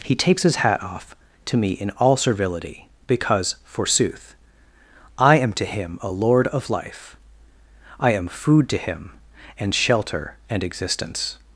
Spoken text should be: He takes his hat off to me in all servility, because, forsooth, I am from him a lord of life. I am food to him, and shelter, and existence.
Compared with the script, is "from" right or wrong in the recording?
wrong